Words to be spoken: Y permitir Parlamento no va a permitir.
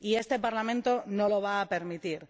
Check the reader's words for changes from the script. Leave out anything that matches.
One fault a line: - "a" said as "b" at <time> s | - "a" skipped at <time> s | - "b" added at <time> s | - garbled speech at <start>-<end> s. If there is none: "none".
- "permitir" said as "este" at 0.1 s
- "lo" added at 1.3 s